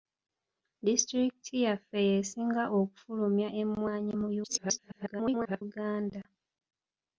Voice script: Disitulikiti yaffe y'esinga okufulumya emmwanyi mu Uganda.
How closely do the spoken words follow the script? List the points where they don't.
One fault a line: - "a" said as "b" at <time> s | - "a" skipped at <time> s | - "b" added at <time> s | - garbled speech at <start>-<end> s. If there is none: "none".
- garbled speech at 4.4-5.6 s